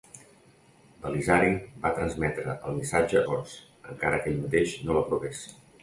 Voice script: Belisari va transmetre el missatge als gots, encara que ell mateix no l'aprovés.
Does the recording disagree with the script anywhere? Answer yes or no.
yes